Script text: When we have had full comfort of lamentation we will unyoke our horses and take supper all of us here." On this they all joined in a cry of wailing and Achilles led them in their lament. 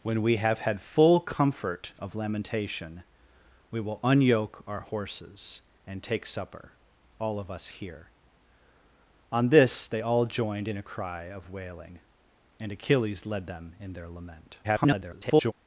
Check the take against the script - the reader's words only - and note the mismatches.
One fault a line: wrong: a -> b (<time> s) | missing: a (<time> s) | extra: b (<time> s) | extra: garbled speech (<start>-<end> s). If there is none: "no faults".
extra: garbled speech (14.6-15.5 s)